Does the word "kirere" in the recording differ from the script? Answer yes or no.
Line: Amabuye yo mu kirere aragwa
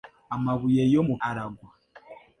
yes